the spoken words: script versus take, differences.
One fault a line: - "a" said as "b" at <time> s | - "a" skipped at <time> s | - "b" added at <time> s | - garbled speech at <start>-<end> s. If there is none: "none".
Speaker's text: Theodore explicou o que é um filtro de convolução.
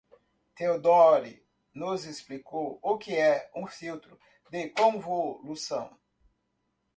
- "nos" added at 1.7 s